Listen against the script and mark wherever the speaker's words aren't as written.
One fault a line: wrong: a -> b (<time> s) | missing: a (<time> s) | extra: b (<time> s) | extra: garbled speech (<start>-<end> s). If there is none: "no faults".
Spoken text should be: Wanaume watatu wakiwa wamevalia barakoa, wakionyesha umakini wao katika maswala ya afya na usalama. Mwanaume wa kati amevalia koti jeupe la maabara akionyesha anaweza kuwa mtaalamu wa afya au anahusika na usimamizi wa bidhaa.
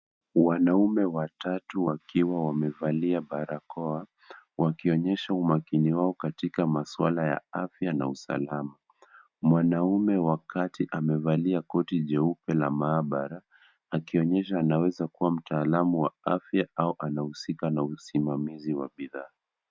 no faults